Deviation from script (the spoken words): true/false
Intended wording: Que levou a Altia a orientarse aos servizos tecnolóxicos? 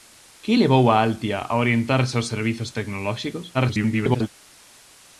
true